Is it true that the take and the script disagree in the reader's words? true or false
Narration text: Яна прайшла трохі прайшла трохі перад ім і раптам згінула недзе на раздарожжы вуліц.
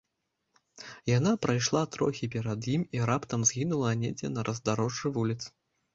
true